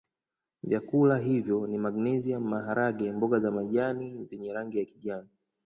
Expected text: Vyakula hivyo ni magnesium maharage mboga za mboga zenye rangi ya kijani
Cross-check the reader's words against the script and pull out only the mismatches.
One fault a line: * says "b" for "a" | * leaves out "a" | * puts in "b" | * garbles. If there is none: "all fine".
* says "majani" for "mboga"